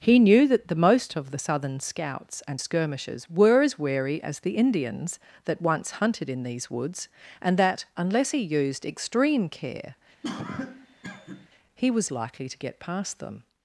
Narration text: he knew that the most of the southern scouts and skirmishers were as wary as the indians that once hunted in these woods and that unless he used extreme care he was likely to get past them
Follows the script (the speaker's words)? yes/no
yes